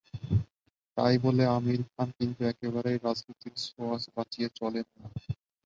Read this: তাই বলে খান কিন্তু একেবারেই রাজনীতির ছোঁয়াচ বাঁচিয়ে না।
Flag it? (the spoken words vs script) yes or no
yes